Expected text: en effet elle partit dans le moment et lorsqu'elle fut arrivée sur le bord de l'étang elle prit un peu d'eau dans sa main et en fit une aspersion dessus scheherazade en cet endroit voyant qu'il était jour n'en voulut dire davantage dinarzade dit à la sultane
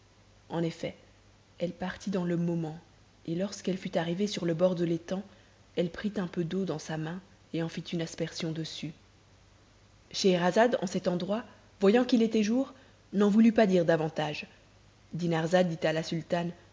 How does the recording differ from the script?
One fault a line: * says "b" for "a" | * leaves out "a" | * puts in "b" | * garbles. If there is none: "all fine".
* puts in "pas"